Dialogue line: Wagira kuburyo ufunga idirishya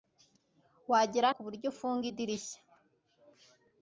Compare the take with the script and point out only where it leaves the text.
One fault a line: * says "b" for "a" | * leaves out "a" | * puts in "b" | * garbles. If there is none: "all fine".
all fine